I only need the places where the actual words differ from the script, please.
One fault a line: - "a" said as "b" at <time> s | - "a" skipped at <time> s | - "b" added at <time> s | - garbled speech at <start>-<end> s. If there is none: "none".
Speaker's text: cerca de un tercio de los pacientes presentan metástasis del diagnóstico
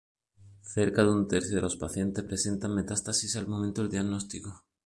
- "al momento" added at 3.3 s